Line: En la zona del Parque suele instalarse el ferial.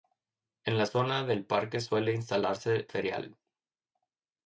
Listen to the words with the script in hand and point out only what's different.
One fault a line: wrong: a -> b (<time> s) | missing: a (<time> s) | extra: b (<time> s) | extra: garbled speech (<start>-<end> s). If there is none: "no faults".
missing: el (2.9 s)